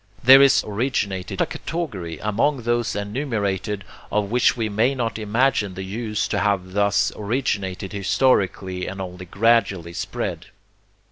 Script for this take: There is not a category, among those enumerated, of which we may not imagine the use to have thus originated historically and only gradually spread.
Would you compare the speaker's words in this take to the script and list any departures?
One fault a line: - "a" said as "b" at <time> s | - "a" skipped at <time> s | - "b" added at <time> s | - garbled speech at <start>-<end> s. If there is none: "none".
- "not" said as "originated" at 0.6 s